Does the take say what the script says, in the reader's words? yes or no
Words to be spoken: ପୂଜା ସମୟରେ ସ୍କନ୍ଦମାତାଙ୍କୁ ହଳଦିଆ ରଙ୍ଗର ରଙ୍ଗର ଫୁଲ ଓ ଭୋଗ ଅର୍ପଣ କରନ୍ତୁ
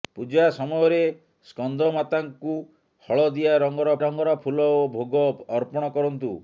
yes